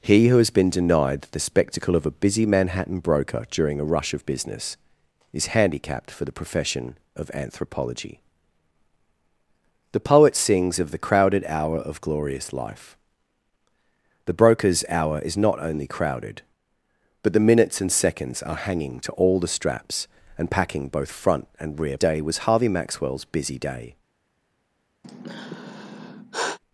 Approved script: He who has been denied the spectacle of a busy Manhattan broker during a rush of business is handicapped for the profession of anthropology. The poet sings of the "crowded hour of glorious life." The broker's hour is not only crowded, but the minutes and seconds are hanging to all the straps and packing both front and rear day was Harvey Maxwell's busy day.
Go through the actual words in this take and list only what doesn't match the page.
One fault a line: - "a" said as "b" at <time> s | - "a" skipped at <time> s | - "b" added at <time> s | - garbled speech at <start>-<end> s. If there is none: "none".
none